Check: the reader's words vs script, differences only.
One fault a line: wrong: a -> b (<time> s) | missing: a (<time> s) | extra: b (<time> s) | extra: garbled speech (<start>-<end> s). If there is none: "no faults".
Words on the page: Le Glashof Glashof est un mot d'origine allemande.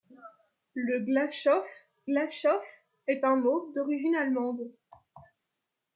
no faults